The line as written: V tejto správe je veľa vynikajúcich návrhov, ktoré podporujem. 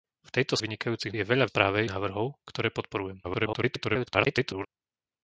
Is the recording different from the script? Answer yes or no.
yes